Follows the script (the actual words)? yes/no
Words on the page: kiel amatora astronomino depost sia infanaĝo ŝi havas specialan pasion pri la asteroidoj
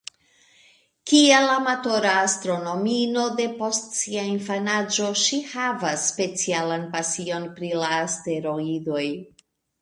yes